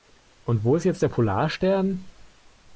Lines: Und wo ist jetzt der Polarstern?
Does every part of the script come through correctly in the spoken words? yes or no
yes